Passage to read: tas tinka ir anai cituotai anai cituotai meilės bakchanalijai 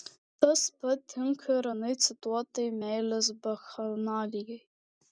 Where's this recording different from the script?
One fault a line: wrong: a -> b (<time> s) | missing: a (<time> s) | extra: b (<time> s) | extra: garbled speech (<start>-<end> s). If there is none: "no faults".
extra: pat (0.8 s)
missing: anai cituotai (2.7 s)